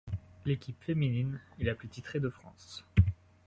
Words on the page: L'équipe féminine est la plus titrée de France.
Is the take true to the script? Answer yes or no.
yes